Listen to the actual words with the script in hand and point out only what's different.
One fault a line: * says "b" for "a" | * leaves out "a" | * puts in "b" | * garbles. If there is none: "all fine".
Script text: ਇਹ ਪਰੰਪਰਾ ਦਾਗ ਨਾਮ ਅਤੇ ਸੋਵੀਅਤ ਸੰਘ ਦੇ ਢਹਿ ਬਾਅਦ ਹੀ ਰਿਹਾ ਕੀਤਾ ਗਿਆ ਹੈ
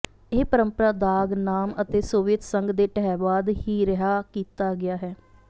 all fine